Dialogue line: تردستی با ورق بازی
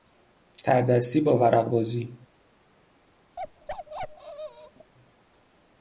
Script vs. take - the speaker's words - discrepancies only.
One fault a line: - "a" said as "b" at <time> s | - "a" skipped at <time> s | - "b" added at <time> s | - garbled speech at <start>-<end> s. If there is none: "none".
none